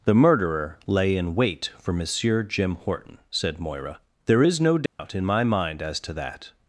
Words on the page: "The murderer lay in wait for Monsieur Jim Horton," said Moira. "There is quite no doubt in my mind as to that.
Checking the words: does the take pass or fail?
fail